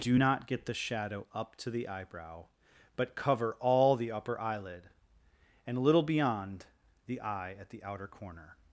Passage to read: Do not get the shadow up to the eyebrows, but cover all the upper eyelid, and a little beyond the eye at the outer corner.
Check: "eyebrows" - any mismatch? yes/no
yes